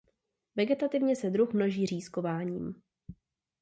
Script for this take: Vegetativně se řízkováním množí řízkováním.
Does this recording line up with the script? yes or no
no